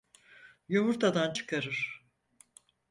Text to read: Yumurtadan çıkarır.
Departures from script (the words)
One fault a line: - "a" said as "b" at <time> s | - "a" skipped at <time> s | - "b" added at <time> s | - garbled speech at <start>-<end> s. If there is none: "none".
none